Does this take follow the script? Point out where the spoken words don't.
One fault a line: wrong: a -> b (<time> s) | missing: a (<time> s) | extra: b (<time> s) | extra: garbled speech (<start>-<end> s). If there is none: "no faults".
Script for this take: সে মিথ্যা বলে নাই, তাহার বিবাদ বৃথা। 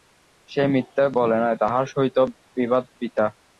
extra: সহিত (1.9 s)